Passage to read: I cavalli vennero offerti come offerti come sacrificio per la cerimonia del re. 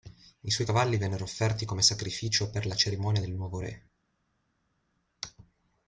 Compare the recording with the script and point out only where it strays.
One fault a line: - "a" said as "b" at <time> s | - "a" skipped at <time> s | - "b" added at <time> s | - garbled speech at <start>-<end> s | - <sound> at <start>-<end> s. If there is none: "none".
- "suoi" added at 0.5 s
- "offerti come" skipped at 1.8 s
- "nuovo" added at 3.3 s